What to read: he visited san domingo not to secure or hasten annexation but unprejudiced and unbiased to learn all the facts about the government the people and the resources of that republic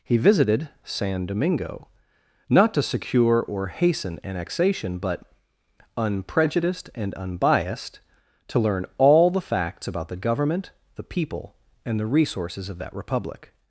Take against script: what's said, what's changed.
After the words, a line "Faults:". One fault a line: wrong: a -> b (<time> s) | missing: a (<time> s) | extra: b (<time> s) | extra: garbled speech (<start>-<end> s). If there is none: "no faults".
he visited san domingo not to secure or hasten annexation but unprejudiced and unbiased to learn all the facts about the government the people and the resources of that republic
Faults:
no faults